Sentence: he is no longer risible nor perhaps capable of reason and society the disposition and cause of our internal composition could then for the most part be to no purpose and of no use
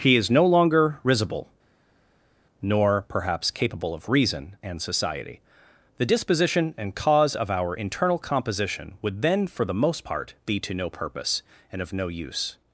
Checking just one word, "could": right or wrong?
wrong